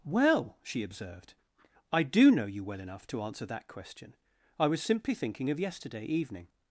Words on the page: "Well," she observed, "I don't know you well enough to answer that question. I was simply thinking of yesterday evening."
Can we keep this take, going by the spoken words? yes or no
no